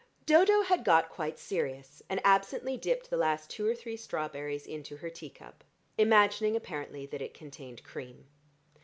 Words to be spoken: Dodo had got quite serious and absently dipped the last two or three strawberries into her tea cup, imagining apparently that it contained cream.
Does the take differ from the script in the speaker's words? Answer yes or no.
no